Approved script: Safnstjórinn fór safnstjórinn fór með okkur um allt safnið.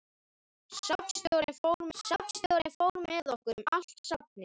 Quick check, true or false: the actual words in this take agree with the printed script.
true